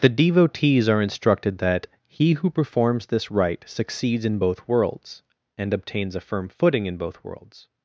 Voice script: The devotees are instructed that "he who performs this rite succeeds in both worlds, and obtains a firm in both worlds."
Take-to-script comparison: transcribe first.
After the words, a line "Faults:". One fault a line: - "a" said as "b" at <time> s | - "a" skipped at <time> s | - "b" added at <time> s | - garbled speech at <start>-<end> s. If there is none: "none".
The devotees are instructed that "he who performs this rite succeeds in both worlds, and obtains a firm footing in both worlds."
Faults:
- "footing" added at 6.5 s